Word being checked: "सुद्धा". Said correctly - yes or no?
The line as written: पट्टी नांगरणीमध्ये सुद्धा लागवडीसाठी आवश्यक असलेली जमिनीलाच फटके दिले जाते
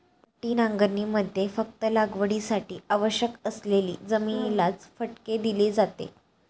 no